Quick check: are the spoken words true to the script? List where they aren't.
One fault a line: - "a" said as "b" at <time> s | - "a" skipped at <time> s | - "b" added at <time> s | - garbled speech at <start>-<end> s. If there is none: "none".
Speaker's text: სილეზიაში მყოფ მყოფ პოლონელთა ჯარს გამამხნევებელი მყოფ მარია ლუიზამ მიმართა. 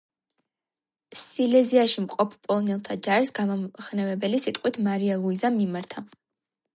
- "მყოფ" skipped at 2.3 s
- "მყოფ" said as "სიტყვით" at 4.5 s